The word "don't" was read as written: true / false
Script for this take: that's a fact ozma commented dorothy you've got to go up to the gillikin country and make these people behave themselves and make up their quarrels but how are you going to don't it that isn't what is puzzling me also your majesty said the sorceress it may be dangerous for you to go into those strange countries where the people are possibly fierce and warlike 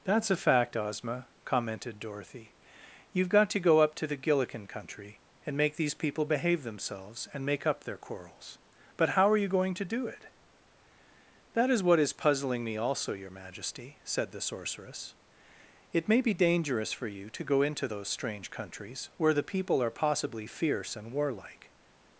false